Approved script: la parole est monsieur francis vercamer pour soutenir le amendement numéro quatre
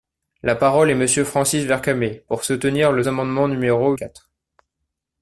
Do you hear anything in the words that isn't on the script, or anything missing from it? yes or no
no